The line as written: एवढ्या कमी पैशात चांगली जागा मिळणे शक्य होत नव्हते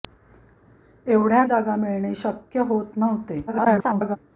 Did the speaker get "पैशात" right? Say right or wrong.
wrong